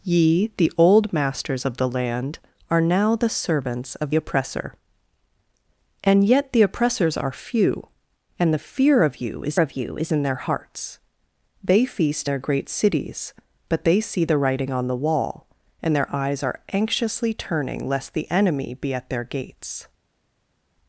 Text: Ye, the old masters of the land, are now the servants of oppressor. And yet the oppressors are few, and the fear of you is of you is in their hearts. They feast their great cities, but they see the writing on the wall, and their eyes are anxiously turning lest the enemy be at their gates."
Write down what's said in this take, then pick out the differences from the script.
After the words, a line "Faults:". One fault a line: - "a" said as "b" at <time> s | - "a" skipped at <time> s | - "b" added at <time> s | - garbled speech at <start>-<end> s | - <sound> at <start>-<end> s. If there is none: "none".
Ye, the old masters of the land, are now the servants of oppressor. And yet the oppressors are few, and the fear of you is of you is in their hearts. They feast their great cities, but they see the writing on the wall, and their eyes are anxiously turning lest the enemy be at their gates."
Faults:
none